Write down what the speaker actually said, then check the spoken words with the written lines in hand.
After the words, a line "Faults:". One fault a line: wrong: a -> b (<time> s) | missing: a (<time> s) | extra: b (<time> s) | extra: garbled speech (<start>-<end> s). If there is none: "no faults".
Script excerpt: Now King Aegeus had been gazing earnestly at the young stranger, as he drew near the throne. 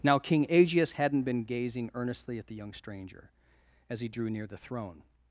Now King Aegeus hadn't been gazing earnestly at the young stranger, as he drew near the throne.
Faults:
wrong: had -> hadn't (0.9 s)